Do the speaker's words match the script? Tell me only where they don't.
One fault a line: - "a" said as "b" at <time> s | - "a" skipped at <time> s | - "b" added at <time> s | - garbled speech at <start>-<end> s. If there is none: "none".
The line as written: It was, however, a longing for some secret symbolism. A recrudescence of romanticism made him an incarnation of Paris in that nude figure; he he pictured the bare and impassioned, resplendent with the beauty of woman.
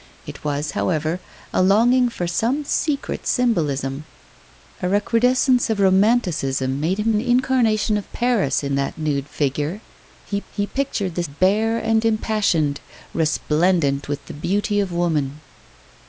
none